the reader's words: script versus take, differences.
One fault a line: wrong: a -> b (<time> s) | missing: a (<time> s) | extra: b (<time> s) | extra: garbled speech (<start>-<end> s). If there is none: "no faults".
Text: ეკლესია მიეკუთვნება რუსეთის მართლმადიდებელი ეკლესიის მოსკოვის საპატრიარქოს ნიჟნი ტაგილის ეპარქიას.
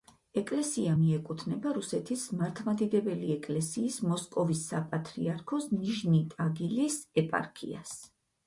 no faults